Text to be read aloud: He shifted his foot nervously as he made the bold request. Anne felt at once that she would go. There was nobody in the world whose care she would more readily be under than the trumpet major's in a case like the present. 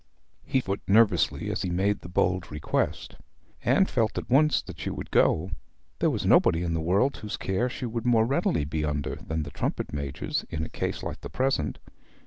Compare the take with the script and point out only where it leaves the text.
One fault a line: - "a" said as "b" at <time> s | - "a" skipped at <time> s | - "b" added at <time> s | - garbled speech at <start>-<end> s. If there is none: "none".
- "shifted his" skipped at 0.6 s